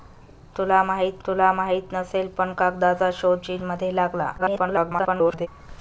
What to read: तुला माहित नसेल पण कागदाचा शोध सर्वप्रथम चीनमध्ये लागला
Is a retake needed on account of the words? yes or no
yes